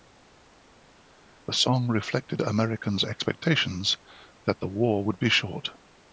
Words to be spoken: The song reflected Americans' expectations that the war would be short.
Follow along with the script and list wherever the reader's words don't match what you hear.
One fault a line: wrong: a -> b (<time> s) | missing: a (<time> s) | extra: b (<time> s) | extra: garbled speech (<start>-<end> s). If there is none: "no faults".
no faults